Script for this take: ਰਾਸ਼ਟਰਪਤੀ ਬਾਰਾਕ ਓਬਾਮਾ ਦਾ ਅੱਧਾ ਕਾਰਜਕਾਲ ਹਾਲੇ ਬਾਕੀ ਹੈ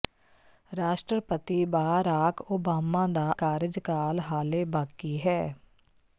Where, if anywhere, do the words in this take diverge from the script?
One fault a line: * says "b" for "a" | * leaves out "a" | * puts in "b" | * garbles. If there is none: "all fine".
* leaves out "ਅੱਧਾ"